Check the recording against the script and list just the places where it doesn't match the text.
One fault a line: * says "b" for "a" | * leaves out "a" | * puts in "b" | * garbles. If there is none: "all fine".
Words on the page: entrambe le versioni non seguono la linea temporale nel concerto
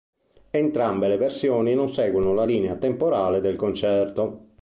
* says "del" for "nel"